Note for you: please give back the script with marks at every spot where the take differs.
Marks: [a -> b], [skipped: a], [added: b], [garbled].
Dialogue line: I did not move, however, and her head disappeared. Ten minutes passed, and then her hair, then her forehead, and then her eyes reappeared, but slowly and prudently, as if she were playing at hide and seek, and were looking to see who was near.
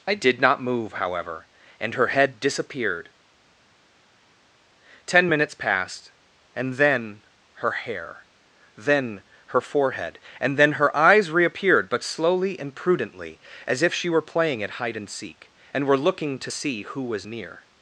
I did not move, however, and her head disappeared. Ten minutes passed, and then her hair, then her forehead, and then her eyes reappeared, but slowly and prudently, as if she were playing at hide and seek, and were looking to see who was near.